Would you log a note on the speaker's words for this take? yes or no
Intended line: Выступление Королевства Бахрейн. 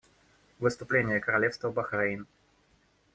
no